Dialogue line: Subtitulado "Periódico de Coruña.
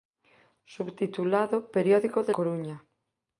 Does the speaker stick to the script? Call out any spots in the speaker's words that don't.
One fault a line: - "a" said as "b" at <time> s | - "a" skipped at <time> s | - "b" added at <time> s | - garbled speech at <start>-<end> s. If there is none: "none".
none